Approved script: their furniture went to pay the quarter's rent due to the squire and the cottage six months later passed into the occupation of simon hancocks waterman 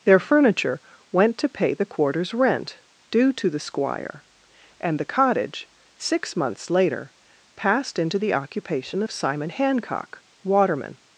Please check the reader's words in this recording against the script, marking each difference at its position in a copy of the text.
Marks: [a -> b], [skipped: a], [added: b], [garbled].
their furniture went to pay the quarter's rent due to the squire and the cottage six months later passed into the occupation of simon [hancocks -> hancock] waterman